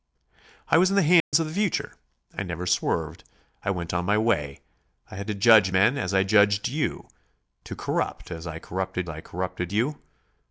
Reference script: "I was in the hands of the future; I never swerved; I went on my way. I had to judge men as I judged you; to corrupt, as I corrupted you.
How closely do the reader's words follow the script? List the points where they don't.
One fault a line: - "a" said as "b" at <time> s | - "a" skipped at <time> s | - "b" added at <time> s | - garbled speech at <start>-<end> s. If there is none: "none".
- "I corrupted" added at 9.1 s